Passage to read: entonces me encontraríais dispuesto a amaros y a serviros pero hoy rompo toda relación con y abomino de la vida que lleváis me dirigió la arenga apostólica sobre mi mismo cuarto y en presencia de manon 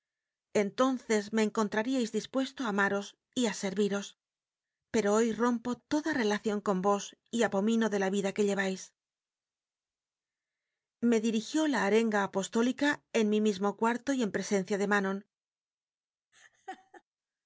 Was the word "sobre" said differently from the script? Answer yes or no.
yes